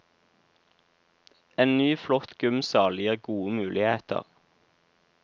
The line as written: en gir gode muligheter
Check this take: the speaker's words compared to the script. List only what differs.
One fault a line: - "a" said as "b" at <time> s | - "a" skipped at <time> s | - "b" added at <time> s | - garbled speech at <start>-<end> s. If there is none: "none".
- "ny flott gymsal" added at 1.8 s